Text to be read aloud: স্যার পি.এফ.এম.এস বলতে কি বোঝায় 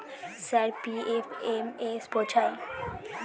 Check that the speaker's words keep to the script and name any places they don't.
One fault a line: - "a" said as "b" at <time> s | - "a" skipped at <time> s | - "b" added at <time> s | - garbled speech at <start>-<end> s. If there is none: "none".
- "বলতে কি" skipped at 2.0 s